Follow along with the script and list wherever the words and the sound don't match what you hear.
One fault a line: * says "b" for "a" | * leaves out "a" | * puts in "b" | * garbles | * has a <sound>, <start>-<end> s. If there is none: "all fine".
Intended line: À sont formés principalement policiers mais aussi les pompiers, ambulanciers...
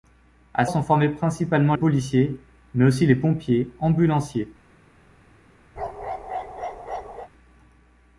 * has a bark, 5.8-7.3 s